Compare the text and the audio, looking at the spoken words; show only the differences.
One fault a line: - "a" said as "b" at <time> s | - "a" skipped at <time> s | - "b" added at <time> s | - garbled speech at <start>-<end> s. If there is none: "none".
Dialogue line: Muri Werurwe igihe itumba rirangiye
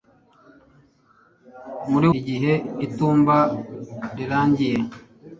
- "Werurwe" skipped at 2.1 s